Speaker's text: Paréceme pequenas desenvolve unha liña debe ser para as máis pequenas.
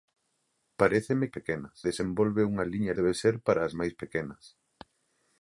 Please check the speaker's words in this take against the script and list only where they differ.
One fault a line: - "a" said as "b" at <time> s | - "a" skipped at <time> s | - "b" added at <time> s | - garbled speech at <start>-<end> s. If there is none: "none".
none